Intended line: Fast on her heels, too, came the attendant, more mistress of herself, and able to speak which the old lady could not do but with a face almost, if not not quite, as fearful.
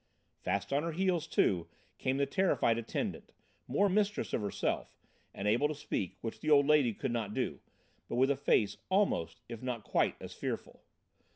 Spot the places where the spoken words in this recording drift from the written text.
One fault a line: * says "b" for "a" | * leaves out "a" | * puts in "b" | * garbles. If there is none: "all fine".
* puts in "terrified"
* leaves out "not"